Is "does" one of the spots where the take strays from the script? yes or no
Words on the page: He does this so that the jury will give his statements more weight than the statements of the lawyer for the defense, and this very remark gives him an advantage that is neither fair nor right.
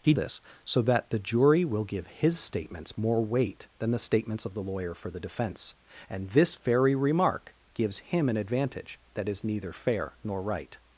yes